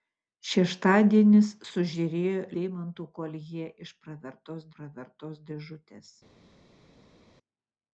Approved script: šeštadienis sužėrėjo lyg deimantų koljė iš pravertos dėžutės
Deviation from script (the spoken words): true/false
true